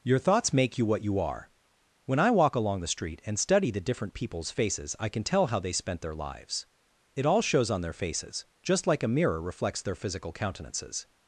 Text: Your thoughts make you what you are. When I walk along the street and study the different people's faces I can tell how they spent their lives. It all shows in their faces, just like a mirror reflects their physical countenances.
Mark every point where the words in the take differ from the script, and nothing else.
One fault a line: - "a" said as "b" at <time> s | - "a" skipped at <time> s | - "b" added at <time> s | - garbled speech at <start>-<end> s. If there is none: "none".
- "in" said as "on" at 7.7 s